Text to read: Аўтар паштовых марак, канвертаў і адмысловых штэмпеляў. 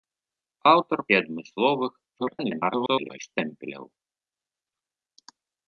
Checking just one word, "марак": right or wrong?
wrong